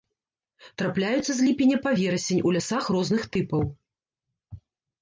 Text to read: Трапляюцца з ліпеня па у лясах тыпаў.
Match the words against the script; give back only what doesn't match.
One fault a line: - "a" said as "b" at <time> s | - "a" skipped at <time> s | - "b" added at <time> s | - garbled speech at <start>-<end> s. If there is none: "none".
- "верасень" added at 2.0 s
- "розных" added at 3.0 s